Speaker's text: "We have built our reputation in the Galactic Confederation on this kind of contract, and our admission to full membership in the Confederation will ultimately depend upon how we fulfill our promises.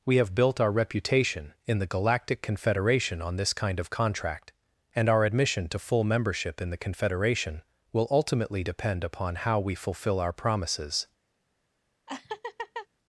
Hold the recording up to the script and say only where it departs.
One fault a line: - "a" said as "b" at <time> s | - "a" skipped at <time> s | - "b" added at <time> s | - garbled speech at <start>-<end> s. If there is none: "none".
none